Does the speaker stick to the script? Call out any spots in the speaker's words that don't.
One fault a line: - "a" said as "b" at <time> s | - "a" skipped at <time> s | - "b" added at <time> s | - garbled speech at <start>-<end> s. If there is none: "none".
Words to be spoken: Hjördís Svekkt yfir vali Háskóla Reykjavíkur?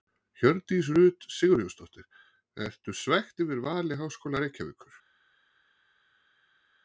- "Rut Sigurjónsdóttir Ertu" added at 1.0 s